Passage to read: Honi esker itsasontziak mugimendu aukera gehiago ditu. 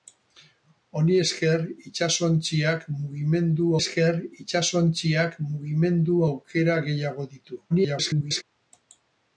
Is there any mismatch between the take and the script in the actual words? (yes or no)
yes